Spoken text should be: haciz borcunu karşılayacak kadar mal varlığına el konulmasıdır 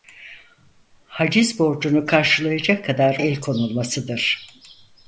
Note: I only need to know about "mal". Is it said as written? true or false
false